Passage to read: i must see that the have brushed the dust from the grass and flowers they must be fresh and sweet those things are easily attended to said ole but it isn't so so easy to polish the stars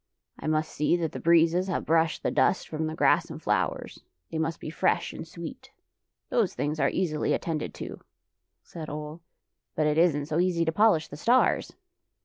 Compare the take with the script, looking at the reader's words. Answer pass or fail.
fail